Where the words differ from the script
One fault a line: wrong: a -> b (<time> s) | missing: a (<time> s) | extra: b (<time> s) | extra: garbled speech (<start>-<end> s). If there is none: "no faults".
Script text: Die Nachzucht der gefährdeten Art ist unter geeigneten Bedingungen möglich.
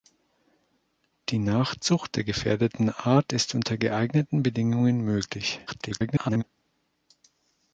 extra: garbled speech (5.7-6.4 s)